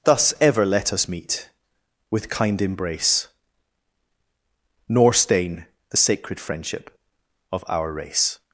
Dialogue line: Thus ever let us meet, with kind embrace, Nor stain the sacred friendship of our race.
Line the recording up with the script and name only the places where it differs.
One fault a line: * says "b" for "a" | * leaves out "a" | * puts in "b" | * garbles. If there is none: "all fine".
all fine